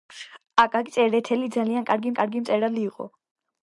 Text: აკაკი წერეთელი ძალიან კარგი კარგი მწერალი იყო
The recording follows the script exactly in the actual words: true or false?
true